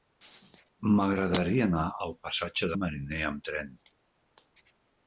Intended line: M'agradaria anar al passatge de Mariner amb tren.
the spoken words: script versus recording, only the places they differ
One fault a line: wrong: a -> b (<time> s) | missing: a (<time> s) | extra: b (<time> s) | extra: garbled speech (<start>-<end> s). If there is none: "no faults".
no faults